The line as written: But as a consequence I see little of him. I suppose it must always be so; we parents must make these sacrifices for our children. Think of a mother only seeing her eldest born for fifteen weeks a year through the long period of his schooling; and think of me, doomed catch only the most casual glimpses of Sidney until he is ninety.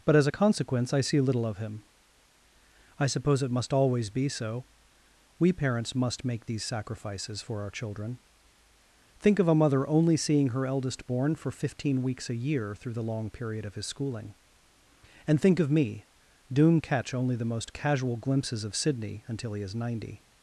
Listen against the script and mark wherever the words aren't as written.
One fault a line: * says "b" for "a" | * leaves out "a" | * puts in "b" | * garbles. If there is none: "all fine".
all fine